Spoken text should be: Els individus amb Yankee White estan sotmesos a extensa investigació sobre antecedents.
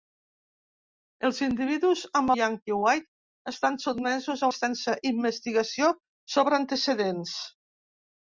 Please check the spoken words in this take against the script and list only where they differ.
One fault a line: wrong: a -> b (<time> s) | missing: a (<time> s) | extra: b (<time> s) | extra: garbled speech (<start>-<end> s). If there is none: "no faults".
no faults